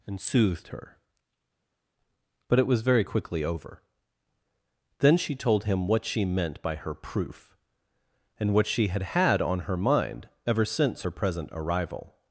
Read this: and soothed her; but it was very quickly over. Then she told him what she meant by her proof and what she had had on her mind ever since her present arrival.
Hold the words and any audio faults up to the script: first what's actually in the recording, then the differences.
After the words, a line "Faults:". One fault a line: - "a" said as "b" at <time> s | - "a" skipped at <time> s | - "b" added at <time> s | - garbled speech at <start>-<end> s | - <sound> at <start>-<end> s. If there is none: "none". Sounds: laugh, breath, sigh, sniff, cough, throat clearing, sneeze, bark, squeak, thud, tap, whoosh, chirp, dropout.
and soothed her; but it was very quickly over. Then she told him what she meant by her proof and what she had had on her mind ever since her present arrival.
Faults:
none